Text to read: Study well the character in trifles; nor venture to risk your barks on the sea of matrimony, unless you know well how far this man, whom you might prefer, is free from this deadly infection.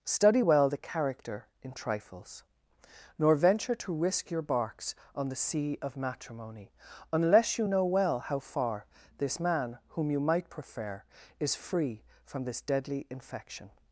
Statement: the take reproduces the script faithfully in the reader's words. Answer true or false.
true